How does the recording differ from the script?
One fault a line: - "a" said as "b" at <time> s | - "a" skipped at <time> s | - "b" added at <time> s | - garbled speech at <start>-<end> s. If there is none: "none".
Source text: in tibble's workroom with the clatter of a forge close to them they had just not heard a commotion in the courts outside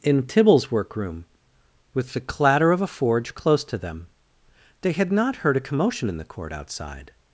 - "just" skipped at 5.1 s
- "courts" said as "court" at 6.2 s